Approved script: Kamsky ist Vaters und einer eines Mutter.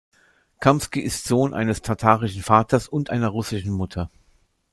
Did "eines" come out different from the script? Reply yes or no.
yes